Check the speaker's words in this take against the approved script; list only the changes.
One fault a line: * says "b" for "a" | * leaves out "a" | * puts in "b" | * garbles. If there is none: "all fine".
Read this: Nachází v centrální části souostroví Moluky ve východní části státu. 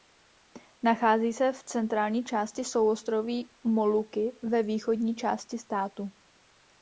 * puts in "se"